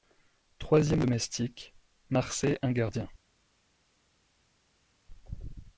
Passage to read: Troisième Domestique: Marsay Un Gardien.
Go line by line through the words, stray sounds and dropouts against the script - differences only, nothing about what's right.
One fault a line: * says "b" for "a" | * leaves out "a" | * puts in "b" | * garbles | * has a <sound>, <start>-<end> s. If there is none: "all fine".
all fine